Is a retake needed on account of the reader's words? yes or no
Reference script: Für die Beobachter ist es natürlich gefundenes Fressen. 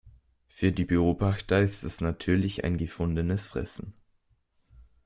yes